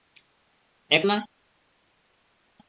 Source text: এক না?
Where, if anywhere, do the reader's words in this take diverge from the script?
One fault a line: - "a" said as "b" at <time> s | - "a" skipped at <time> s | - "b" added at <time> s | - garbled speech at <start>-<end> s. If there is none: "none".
none